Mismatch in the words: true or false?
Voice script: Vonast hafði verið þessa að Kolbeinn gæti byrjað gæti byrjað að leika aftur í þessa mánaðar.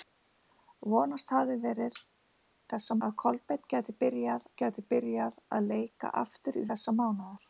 false